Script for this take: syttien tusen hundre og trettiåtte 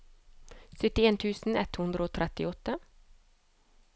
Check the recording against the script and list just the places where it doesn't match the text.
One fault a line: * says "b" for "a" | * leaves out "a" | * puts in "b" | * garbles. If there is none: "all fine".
* puts in "ett"